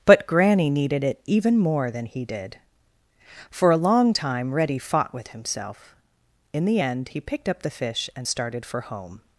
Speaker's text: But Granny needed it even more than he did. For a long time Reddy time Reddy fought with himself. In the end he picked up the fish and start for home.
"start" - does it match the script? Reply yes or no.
no